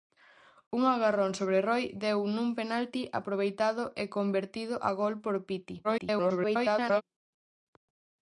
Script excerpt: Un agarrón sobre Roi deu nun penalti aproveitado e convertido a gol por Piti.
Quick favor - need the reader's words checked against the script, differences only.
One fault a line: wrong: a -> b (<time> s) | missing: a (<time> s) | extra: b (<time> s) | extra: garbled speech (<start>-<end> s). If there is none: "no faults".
extra: garbled speech (5.8-7.0 s)